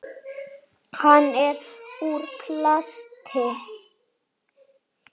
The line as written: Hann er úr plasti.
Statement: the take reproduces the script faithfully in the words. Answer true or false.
true